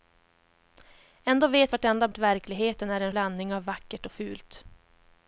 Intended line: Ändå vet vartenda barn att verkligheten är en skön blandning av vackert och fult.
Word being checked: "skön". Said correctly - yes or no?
no